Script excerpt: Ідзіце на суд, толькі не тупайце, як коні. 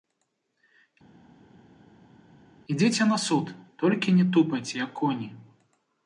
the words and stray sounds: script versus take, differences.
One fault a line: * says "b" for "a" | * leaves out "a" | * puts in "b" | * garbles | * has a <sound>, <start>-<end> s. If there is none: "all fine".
all fine